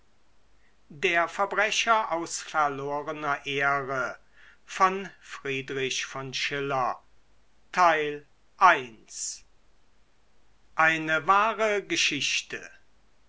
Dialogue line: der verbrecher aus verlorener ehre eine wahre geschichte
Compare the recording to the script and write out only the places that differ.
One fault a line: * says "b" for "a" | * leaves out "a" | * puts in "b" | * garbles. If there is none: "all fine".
all fine